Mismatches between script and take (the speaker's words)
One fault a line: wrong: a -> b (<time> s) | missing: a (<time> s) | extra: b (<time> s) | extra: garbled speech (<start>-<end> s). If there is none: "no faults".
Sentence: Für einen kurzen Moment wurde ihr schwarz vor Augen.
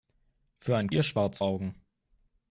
missing: kurzen Moment wurde (0.9 s)
missing: vor (1.4 s)